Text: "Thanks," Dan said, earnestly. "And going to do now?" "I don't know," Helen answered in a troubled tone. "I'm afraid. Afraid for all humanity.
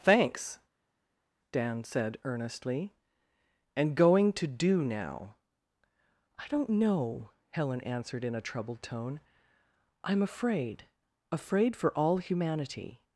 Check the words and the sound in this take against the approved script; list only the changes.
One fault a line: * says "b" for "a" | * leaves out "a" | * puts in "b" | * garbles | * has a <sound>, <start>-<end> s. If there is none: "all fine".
all fine